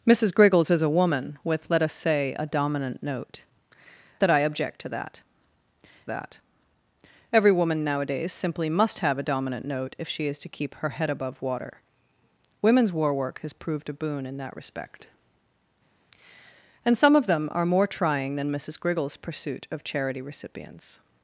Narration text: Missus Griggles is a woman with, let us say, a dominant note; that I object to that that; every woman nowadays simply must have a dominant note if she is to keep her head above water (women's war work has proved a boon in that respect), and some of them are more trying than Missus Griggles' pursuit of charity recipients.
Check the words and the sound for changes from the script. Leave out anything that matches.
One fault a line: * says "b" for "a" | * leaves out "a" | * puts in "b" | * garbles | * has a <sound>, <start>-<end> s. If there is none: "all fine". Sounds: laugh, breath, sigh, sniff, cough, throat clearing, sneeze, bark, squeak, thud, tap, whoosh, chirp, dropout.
all fine